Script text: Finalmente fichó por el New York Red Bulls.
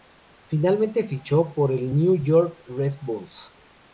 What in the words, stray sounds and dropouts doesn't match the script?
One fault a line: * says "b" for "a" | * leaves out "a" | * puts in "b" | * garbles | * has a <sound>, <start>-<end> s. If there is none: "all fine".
all fine